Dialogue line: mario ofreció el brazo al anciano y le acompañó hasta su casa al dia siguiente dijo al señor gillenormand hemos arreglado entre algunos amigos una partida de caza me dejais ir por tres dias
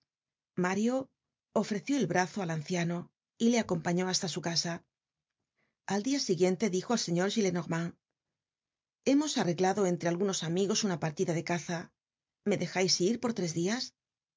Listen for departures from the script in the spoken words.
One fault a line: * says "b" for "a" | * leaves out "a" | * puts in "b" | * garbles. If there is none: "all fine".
all fine